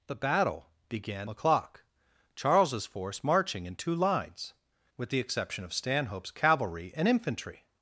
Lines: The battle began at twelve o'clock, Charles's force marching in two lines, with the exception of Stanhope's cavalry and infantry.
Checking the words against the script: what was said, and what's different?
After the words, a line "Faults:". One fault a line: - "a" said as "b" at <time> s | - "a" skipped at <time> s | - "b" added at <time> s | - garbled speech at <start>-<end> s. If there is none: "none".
The battle began o'clock, Charles's force marching in two lines, with the exception of Stanhope's cavalry and infantry.
Faults:
- "at twelve" skipped at 1.3 s